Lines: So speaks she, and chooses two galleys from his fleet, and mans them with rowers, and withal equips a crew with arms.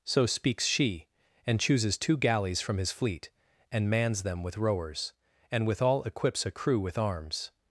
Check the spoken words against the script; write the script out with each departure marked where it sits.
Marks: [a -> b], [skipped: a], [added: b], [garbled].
So speaks she, and chooses two galleys from his fleet, and mans them with rowers, and withal equips a crew with arms.